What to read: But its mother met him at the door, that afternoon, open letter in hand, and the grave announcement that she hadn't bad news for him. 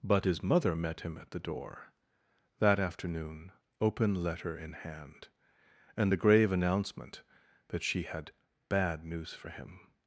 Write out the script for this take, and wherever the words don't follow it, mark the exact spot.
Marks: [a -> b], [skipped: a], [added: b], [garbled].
But [its -> his] mother met him at the door, that afternoon, open letter in hand, and the grave announcement that she [hadn't -> had] bad news for him.